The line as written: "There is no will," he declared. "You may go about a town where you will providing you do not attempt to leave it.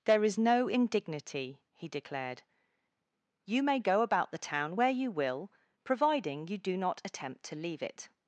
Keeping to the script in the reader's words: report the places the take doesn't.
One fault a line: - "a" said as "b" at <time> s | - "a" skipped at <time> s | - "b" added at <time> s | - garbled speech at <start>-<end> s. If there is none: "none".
- "will" said as "indignity" at 0.7 s
- "a" said as "the" at 4.3 s